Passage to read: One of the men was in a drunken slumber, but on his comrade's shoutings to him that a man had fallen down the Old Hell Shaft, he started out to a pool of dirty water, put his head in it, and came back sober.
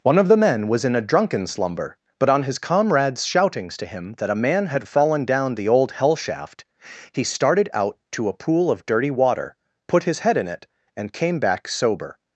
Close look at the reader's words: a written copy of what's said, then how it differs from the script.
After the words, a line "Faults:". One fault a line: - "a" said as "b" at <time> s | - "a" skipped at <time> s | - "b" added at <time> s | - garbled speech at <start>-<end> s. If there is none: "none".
One of the men was in a drunken slumber, but on his comrade's shoutings to him that a man had fallen down the Old Hell Shaft, he started out to a pool of dirty water, put his head in it, and came back sober.
Faults:
none